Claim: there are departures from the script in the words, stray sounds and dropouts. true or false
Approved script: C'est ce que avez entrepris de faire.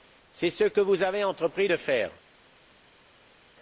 true